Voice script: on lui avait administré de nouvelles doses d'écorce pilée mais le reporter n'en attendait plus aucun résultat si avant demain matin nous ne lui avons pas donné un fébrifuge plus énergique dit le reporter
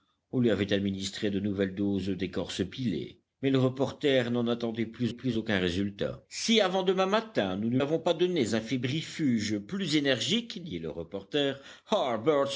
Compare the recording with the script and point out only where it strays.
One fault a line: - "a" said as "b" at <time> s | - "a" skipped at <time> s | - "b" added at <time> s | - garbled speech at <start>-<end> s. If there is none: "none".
- "plus" added at 5.1 s
- "lui" skipped at 7.8 s